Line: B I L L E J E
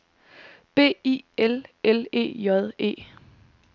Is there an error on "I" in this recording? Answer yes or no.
no